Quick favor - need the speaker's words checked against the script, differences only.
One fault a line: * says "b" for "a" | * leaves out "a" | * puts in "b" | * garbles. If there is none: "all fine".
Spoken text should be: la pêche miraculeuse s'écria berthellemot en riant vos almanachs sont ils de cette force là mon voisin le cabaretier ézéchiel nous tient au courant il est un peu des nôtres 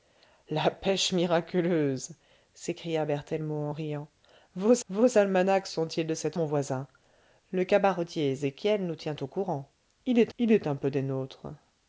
* puts in "vos"
* leaves out "force là"
* puts in "il est"